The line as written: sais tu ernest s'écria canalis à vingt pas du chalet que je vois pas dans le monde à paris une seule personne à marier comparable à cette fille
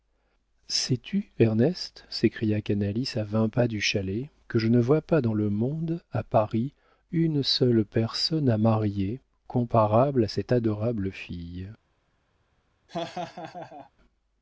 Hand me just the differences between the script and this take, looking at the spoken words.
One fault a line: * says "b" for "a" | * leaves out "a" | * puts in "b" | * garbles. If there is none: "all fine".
* puts in "ne"
* puts in "adorable"